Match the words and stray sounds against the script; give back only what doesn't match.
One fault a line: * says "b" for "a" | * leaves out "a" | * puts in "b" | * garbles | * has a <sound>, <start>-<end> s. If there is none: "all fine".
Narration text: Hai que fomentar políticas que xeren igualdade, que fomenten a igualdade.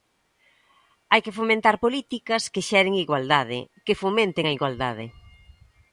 all fine